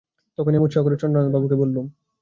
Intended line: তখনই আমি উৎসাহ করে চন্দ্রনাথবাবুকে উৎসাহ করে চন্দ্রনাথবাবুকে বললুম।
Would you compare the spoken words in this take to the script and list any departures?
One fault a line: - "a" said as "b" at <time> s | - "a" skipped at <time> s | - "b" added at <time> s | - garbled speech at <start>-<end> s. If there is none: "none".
- "উৎসাহ করে চন্দ্রনাথবাবুকে" skipped at 1.6 s